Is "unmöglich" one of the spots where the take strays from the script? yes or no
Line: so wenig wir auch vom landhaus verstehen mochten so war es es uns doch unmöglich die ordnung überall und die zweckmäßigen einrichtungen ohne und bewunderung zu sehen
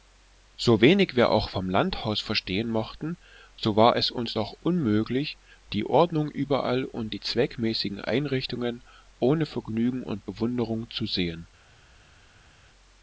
no